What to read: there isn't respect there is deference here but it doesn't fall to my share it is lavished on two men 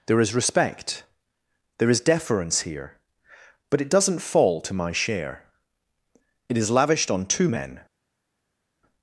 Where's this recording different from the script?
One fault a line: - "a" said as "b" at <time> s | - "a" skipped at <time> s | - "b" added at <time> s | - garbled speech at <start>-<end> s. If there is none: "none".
- "isn't" said as "is" at 0.2 s